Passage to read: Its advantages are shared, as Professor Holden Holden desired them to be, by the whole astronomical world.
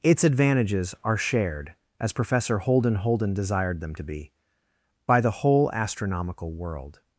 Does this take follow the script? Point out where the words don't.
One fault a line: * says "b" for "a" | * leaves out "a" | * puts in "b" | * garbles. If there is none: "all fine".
all fine